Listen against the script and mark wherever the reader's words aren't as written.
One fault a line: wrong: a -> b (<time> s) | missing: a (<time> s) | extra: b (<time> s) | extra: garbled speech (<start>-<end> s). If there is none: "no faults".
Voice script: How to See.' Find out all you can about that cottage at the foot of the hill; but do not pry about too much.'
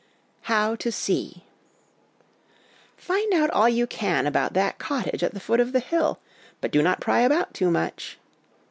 no faults